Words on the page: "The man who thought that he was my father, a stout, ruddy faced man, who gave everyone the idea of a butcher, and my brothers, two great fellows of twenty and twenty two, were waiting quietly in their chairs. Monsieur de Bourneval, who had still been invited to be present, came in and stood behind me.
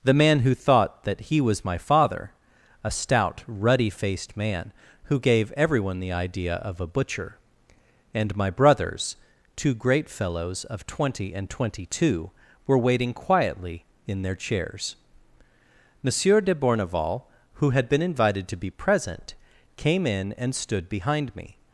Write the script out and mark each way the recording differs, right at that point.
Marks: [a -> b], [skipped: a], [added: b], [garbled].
"The man who thought that he was my father, a stout, ruddy faced man, who gave everyone the idea of a butcher, and my brothers, two great fellows of twenty and twenty two, were waiting quietly in their chairs. Monsieur de Bourneval, who had [skipped: still] been invited to be present, came in and stood behind me.